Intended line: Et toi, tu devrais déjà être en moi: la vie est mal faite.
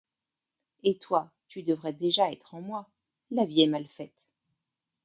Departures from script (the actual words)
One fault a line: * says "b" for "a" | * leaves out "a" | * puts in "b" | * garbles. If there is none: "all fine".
all fine